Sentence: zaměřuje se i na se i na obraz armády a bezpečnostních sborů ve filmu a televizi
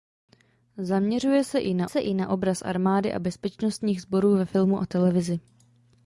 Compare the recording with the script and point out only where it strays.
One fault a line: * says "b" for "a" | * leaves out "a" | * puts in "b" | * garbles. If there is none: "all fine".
all fine